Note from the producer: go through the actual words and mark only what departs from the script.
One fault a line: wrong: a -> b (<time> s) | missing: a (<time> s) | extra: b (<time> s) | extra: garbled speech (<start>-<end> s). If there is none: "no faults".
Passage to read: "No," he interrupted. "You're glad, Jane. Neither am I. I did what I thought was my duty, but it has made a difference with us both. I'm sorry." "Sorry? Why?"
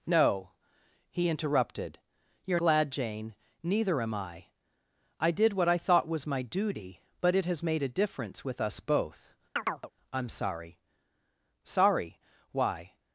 no faults